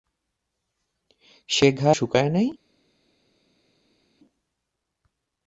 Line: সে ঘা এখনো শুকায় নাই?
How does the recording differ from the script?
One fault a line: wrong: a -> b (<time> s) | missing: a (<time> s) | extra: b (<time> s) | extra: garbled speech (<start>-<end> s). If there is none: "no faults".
missing: এখনো (1.9 s)